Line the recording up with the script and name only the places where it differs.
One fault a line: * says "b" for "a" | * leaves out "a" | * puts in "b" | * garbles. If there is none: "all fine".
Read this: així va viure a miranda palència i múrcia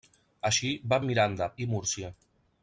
* leaves out "viure"
* leaves out "palència"